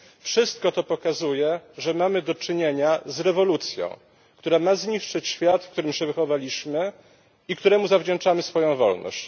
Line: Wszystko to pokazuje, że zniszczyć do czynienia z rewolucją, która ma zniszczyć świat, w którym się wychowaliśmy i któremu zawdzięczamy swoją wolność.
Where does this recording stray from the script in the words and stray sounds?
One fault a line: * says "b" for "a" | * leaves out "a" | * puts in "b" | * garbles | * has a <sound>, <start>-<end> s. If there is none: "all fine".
* says "mamy" for "zniszczyć"